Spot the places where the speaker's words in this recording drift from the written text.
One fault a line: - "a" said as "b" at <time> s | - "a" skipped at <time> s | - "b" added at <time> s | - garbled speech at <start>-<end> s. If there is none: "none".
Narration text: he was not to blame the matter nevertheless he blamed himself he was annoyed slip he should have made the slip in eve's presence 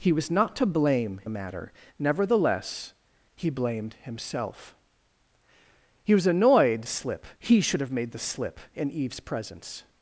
none